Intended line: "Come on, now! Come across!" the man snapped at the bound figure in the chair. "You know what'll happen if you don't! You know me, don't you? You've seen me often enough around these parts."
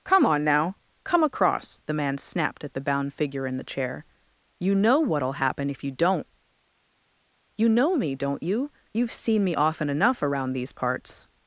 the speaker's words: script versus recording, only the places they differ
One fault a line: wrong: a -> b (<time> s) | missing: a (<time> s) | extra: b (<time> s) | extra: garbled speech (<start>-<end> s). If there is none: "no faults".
no faults